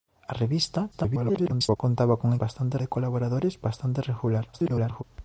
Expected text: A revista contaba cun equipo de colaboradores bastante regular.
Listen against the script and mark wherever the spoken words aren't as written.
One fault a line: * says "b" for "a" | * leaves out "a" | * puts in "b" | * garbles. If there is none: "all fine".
* garbles
* says "bastante" for "equipo"
* garbles